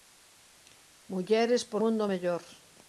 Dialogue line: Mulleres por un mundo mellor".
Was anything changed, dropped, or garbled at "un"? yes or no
yes